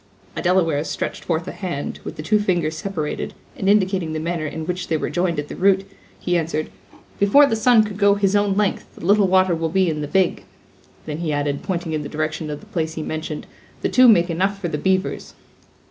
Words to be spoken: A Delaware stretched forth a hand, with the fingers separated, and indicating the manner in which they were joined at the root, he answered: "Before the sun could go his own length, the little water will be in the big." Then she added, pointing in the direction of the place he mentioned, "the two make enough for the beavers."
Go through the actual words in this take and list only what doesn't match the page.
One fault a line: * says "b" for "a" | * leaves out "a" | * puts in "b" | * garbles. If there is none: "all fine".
* puts in "two"
* says "he" for "she"